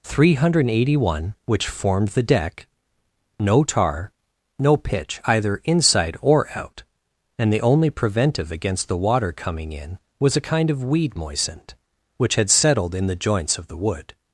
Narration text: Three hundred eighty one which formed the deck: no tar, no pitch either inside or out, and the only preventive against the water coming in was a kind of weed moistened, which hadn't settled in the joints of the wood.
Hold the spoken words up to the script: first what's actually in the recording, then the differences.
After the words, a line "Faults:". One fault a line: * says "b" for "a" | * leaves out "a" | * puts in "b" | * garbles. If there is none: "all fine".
Three hundred eighty one which formed the deck: no tar, no pitch either inside or out, and the only preventive against the water coming in was a kind of weed moistened, which had settled in the joints of the wood.
Faults:
* says "had" for "hadn't"